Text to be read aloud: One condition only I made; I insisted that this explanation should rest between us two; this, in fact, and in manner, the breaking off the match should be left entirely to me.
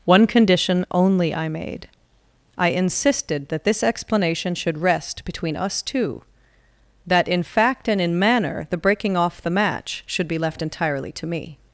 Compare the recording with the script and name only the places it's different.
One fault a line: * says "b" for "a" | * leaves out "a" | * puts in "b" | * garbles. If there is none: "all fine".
* says "that" for "this"